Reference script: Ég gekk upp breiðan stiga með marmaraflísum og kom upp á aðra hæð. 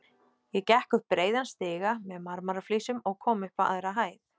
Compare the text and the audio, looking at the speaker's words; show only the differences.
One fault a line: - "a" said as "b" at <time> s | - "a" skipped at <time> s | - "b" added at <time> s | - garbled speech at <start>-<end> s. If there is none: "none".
none